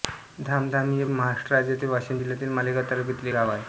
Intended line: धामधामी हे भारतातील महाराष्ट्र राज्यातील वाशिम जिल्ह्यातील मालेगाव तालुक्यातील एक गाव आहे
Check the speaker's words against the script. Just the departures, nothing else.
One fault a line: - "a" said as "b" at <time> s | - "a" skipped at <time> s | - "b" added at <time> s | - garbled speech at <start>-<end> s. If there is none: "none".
- "भारतातील" skipped at 1.1 s
- "एक" skipped at 3.3 s